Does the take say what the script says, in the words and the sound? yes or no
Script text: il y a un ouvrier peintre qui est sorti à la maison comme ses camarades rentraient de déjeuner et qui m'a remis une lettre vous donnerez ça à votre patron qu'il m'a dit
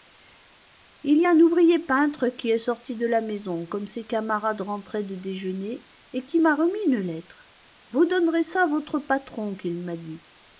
no